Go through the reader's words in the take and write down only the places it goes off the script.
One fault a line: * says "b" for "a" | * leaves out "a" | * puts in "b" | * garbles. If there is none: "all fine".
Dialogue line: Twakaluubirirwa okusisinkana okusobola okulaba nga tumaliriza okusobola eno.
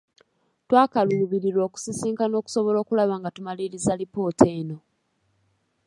* says "alipoota" for "okusobola"